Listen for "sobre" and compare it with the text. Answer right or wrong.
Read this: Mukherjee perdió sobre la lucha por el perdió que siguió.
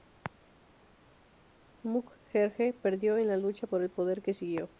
wrong